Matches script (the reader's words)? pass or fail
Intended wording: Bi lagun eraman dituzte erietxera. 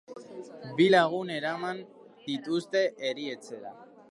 pass